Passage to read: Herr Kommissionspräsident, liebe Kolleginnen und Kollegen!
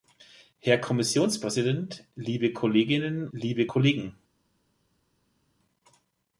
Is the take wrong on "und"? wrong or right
wrong